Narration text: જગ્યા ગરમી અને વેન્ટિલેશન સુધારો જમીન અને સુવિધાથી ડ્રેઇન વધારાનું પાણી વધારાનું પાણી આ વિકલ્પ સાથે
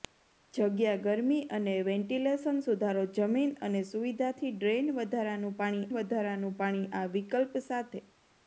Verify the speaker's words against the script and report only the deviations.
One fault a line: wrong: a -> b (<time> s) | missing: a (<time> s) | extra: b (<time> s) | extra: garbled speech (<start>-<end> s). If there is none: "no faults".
no faults